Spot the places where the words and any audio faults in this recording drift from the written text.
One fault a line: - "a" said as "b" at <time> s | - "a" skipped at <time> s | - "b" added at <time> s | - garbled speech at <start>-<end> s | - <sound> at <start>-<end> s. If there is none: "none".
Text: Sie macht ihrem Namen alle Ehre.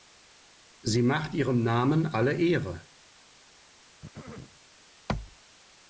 - throat clearing at 4.0-4.6 s